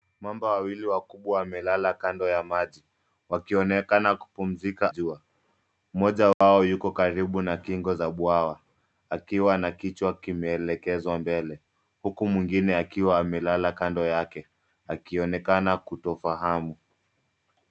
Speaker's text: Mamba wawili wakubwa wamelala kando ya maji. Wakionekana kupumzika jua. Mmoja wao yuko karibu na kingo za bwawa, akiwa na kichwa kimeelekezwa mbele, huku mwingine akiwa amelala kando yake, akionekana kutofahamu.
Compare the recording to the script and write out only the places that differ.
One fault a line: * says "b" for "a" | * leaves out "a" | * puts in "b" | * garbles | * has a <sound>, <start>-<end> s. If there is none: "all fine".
* has a dropout, 6.3-6.4 s